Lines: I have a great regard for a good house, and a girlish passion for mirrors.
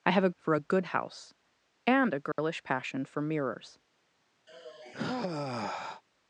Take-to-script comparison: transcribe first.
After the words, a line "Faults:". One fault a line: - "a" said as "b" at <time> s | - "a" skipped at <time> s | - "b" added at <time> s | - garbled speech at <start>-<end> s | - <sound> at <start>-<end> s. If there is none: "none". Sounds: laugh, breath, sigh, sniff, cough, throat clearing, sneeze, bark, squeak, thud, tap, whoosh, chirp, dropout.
I have a for a good house, and a girlish passion for mirrors.
Faults:
- "great regard" skipped at 0.3 s
- dropout at 2.3-2.4 s
- sigh at 4.5-6.0 s